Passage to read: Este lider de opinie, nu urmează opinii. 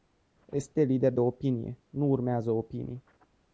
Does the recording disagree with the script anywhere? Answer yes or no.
no